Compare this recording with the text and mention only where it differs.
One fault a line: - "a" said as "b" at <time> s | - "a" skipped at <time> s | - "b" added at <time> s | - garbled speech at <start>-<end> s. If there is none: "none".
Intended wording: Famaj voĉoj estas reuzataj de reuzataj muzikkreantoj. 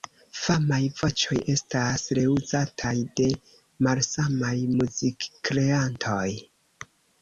- "reuzataj" said as "malsamaj" at 3.9 s